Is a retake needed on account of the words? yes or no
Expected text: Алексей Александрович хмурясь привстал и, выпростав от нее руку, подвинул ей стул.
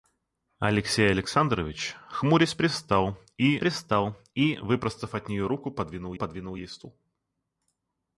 yes